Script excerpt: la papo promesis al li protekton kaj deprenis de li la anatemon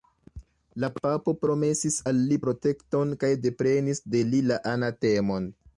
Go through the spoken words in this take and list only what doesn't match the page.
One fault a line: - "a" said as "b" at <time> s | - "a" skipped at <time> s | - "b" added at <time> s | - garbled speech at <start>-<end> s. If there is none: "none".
none